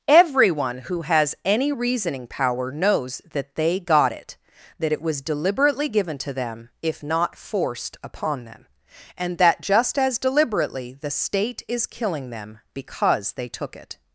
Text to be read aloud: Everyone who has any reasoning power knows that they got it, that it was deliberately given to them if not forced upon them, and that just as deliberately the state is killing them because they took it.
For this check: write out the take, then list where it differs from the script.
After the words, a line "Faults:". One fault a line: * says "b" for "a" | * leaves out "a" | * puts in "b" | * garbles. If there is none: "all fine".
Everyone who has any reasoning power knows that they got it, that it was deliberately given to them if not forced upon them, and that just as deliberately the state is killing them because they took it.
Faults:
all fine